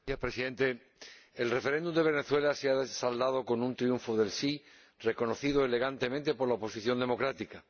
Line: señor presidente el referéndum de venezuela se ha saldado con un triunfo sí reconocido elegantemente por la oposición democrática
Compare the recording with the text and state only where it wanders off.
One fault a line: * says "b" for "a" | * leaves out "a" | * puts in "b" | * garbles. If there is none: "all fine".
* puts in "del"